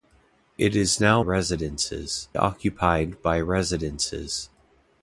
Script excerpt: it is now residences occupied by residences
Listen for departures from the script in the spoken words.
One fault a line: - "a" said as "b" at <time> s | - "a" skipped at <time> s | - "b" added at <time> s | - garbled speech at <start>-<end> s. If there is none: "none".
none